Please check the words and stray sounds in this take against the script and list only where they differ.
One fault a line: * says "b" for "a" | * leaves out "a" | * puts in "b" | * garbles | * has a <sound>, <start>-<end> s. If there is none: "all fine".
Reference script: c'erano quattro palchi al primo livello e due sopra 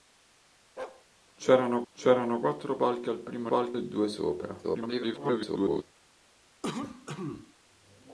* has a bark, 0.8-1.1 s
* puts in "c'erano"
* says "palchi" for "livello"
* garbles
* has a cough, 6.6-7.5 s